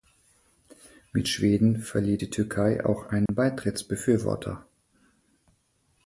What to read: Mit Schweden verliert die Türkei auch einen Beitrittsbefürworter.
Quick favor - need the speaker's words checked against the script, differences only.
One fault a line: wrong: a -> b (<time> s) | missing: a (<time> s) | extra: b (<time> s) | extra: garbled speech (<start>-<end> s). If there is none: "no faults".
no faults